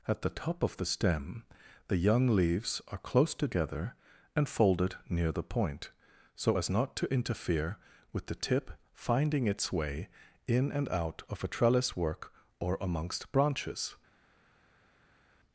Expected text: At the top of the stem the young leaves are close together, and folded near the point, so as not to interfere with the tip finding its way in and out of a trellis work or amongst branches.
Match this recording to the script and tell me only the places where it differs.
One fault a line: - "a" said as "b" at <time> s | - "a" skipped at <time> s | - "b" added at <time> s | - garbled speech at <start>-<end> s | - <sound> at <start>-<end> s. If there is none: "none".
none